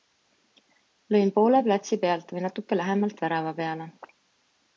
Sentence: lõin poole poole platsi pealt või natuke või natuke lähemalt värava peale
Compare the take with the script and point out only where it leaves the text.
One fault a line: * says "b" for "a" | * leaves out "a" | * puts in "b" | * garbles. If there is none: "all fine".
* leaves out "poole"
* leaves out "või natuke"